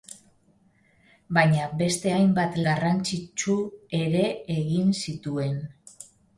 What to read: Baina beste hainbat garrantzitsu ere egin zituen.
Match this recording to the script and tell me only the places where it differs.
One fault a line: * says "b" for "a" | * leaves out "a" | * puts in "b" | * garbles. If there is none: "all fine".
all fine